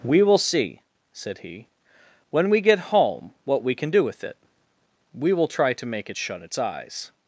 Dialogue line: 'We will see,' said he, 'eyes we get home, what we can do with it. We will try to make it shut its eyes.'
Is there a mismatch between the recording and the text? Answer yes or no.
yes